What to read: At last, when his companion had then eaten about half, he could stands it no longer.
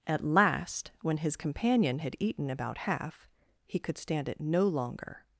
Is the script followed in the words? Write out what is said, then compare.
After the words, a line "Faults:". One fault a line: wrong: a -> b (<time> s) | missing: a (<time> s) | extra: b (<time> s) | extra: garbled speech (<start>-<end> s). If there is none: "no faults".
At last, when his companion had eaten about half, he could stand it no longer.
Faults:
missing: then (2.1 s)
wrong: stands -> stand (4.0 s)